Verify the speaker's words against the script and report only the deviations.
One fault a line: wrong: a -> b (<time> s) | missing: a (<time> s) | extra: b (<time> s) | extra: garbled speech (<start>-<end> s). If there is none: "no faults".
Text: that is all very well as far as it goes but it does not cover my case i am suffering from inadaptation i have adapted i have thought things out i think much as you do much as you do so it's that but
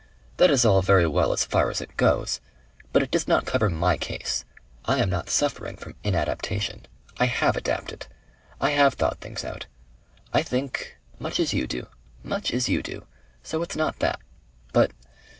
extra: not (5.1 s)
extra: not (13.8 s)